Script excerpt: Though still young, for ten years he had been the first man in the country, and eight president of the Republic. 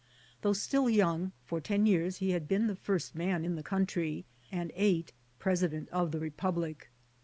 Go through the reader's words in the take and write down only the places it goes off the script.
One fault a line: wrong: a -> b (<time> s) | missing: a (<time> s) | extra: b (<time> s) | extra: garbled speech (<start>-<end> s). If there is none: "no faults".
no faults